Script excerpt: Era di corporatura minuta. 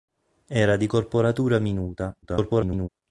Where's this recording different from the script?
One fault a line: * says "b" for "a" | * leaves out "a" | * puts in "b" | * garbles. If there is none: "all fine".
* garbles